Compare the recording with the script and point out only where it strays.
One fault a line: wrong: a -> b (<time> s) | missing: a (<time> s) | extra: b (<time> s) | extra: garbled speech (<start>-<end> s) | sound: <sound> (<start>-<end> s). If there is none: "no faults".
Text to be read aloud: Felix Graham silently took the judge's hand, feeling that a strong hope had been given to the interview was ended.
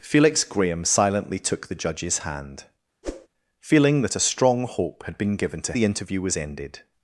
sound: whoosh (3.0-3.3 s)